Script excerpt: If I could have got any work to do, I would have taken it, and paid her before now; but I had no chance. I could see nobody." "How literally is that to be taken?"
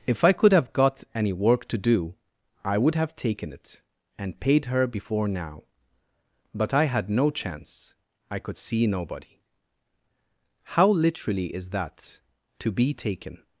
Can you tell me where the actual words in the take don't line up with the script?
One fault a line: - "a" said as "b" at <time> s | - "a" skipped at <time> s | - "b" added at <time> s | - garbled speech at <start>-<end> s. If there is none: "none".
none